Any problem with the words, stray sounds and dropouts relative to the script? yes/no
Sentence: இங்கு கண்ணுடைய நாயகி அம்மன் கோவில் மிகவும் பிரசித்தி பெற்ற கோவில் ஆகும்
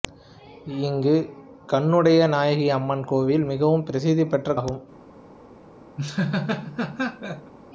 yes